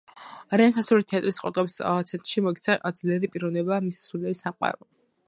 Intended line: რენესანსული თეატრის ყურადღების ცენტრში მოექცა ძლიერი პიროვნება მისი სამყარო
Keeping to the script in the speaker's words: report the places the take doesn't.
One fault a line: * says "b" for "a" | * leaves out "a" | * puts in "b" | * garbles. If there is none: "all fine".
* puts in "სულიერი"